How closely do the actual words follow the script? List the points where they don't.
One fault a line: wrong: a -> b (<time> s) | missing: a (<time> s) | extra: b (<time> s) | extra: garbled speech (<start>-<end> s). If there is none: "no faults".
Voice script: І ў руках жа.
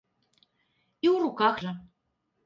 no faults